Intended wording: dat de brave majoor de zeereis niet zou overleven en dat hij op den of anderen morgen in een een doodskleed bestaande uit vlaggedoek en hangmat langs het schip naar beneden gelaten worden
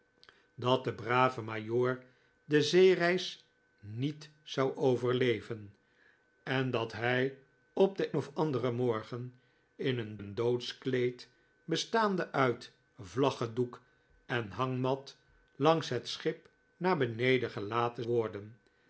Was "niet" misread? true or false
false